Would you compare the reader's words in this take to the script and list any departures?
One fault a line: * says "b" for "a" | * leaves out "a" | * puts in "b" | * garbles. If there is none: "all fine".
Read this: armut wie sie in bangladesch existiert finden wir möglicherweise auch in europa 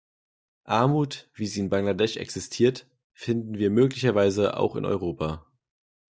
all fine